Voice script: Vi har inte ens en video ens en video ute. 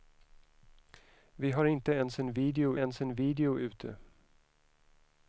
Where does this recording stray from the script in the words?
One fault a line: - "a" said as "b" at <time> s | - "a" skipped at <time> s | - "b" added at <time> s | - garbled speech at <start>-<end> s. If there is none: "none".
none